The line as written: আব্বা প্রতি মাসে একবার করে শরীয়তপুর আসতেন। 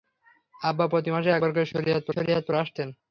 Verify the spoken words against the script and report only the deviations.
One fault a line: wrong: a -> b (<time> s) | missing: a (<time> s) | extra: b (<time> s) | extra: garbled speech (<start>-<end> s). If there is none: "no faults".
extra: শরীয়তপুর (2.1 s)